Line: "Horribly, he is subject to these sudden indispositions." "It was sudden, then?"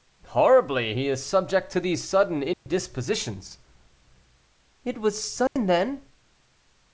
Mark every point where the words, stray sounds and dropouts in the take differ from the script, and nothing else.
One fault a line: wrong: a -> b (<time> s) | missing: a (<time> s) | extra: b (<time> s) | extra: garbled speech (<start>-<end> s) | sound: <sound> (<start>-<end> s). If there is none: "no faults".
sound: dropout (2.5-2.7 s)
sound: dropout (5.5-5.6 s)